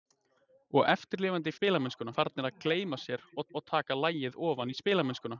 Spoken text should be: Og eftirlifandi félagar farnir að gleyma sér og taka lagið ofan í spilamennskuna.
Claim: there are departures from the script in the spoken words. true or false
true